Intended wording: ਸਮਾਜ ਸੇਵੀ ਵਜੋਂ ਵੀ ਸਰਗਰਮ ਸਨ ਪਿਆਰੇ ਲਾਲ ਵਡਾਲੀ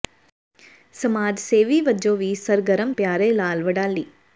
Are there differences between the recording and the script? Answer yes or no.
yes